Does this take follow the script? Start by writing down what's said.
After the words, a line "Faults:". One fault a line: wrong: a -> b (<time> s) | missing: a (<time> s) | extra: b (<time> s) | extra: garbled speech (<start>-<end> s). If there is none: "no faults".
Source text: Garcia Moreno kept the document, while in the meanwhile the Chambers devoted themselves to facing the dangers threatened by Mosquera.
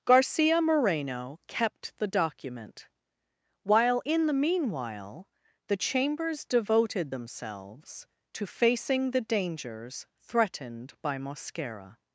Garcia Moreno kept the document, while in the meanwhile the Chambers devoted themselves to facing the dangers threatened by Mosquera.
Faults:
no faults